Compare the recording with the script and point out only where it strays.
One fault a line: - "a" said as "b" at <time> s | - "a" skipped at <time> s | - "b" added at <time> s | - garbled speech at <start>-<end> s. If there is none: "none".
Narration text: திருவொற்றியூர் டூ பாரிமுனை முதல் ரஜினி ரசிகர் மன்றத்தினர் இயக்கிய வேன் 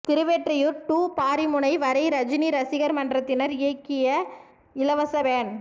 - "முதல்" said as "வரை" at 1.8 s
- "இலவச" added at 4.8 s